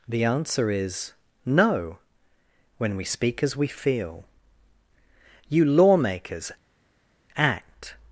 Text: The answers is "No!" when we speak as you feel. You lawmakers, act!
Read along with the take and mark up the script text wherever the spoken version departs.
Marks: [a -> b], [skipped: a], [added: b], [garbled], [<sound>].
The [answers -> answer] is "No!" when we speak as [you -> we] feel. You lawmakers, act!